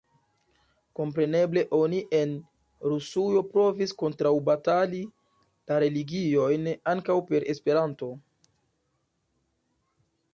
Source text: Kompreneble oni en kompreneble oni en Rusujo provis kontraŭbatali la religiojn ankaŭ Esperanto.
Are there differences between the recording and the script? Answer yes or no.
yes